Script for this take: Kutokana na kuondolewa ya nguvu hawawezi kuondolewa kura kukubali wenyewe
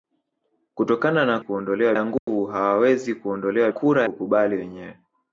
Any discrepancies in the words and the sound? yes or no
yes